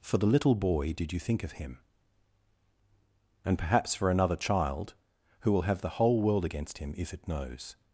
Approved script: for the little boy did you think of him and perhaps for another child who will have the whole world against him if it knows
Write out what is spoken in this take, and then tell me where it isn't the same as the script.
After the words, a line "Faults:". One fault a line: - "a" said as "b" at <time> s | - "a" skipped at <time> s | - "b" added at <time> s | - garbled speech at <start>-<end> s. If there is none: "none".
for the little boy did you think of him and perhaps for another child who will have the whole world against him if it knows
Faults:
none